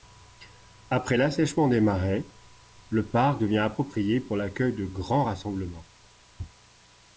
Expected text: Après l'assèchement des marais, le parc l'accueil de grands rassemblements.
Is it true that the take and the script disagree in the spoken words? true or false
true